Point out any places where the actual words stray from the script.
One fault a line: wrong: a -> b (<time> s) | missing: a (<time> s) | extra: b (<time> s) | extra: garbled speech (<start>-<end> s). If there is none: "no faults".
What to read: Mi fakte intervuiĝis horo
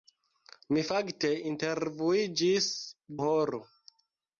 no faults